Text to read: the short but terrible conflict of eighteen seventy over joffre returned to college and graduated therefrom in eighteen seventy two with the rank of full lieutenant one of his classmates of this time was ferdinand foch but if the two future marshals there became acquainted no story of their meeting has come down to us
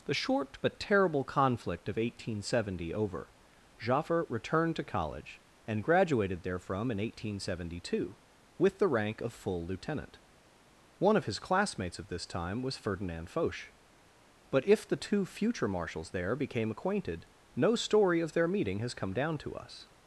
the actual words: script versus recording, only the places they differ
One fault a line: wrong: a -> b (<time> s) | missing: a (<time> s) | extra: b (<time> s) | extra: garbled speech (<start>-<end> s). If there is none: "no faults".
no faults